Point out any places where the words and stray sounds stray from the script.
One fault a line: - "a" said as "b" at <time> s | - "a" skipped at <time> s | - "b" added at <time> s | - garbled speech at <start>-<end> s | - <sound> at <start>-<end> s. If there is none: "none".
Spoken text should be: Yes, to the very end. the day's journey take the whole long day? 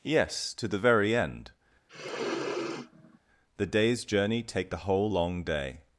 - sniff at 1.9-3.2 s